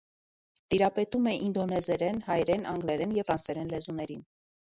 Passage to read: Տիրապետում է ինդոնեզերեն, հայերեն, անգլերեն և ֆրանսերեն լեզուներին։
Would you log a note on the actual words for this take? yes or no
no